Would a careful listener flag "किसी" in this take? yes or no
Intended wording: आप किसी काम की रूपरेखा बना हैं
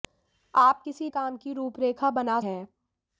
no